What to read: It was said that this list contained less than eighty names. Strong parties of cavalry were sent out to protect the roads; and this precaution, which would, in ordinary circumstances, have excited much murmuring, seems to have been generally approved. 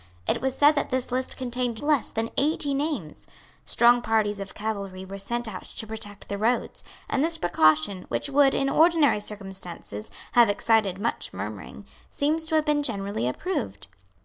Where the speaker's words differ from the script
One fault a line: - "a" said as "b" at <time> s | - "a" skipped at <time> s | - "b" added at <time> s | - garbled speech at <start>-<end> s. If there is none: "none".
none